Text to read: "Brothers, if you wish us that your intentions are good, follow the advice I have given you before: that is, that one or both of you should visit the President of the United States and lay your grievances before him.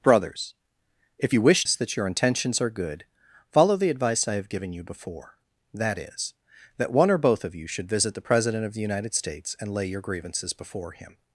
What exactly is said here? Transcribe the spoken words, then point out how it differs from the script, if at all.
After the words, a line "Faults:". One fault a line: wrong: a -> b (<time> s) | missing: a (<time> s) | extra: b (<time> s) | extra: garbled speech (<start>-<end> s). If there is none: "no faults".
"Brothers, if you wish us that your intentions are good, follow the advice I have given you before: that is, that one or both of you should visit the President of the United States and lay your grievances before him.
Faults:
no faults